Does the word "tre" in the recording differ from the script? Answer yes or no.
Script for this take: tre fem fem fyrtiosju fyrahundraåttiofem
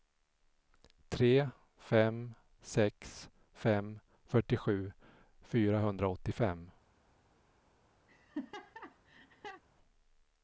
no